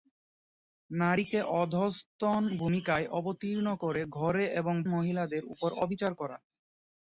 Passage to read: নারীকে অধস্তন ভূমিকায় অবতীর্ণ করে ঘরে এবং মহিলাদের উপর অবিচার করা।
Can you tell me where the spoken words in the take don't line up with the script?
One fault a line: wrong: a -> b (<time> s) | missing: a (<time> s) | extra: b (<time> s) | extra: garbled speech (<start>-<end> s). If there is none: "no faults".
no faults